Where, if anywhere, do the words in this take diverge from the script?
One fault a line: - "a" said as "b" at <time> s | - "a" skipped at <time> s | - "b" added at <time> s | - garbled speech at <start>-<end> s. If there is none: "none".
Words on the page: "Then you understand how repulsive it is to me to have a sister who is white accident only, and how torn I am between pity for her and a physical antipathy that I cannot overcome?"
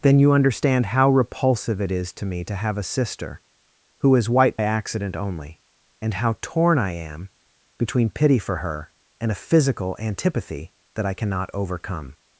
none